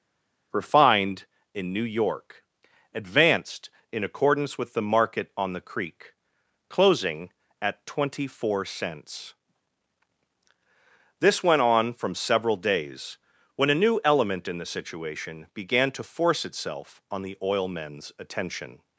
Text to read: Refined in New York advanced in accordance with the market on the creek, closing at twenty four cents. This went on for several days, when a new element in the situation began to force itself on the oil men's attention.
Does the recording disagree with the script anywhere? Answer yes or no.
yes